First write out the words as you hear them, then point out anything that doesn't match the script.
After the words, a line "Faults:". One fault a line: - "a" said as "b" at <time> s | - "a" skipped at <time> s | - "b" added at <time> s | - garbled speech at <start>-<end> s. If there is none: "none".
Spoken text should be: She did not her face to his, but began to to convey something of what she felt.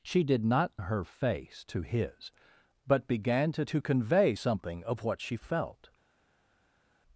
She did not her face to his, but began to to convey something of what she felt.
Faults:
none